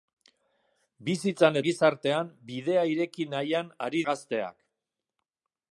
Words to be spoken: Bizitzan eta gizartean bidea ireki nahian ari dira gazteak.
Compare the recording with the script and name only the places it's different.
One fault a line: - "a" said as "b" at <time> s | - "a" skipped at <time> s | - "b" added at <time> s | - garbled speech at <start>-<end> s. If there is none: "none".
- "eta" skipped at 1.6 s
- "dira" skipped at 4.0 s